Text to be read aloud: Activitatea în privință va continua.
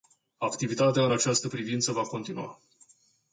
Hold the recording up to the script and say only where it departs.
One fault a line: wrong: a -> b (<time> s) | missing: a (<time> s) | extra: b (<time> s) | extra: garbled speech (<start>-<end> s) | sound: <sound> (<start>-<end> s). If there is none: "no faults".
extra: această (1.1 s)